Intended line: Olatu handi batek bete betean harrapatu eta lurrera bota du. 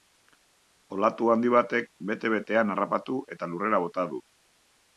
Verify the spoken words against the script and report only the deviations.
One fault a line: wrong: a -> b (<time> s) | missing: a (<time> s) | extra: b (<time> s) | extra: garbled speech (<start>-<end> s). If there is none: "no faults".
no faults